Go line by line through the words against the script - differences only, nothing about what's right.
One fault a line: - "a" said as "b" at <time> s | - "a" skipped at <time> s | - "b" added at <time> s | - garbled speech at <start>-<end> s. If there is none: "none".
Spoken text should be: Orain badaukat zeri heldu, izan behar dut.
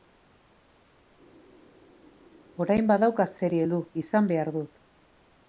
none